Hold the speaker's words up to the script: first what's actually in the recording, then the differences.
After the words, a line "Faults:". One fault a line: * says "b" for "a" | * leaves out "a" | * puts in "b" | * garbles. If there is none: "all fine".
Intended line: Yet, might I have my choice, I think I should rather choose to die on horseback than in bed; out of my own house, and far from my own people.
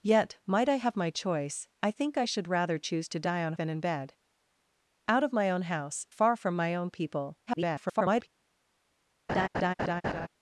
Yet, might I have my choice, I think I should rather choose to die on than in bed; out of my own house, far from my own people. [garbled]
Faults:
* leaves out "horseback"
* leaves out "and"
* garbles